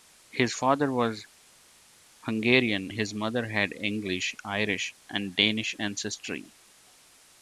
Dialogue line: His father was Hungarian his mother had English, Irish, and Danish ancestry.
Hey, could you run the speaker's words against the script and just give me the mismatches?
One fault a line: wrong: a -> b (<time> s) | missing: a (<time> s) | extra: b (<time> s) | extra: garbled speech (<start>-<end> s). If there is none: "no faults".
no faults